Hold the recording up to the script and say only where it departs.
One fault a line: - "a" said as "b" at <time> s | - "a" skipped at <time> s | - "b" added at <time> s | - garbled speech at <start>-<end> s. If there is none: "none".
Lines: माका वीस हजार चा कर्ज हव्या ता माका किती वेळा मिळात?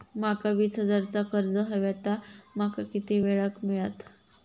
- "क" added at 3.5 s